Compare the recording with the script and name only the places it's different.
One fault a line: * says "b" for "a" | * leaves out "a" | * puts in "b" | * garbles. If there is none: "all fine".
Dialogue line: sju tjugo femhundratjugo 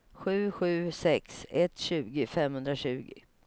* puts in "sju sex ett"